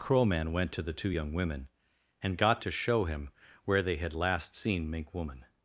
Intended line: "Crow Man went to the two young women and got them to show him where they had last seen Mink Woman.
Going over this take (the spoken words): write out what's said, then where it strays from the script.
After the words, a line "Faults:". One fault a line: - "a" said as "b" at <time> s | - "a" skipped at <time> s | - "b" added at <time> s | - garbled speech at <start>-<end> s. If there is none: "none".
"Crow Man went to the two young women and got to show him where they had last seen Mink Woman.
Faults:
- "them" skipped at 2.6 s